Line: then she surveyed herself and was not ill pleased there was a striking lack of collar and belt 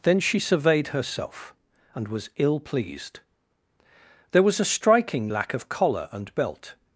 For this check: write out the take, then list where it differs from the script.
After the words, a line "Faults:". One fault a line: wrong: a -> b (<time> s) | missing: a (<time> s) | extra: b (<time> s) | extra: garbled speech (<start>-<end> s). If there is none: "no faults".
then she surveyed herself and was ill pleased there was a striking lack of collar and belt
Faults:
missing: not (2.3 s)